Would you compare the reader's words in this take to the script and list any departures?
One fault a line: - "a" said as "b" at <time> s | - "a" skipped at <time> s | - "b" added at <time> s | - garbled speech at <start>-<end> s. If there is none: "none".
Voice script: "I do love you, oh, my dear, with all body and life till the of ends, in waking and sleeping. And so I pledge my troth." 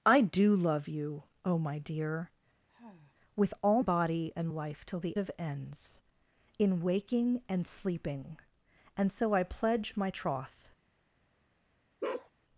none